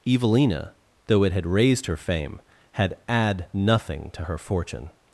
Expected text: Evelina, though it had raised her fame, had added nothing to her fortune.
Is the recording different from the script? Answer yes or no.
yes